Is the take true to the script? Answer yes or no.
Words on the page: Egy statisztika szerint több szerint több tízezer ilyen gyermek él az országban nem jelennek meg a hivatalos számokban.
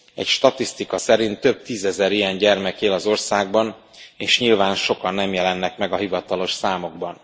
no